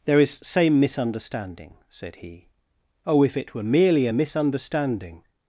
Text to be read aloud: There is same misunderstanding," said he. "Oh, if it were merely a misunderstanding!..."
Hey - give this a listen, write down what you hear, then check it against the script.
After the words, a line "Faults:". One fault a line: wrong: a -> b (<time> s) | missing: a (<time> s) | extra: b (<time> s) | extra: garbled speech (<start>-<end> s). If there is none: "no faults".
There is same misunderstanding," said he. "Oh, if it were merely a misunderstanding!..."
Faults:
no faults